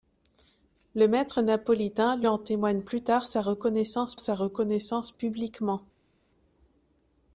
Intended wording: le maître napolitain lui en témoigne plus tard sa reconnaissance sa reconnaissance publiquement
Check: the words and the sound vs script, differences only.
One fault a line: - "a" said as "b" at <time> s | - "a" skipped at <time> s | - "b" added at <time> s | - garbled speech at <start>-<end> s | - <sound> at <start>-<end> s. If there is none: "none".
none